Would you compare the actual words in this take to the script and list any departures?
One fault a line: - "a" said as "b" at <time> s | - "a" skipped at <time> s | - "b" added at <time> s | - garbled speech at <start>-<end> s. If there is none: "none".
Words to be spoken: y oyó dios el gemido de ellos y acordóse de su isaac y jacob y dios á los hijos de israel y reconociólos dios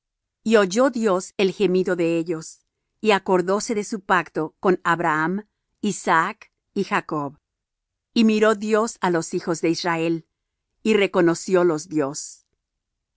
- "pacto con abraham" added at 4.0 s
- "miró" added at 8.3 s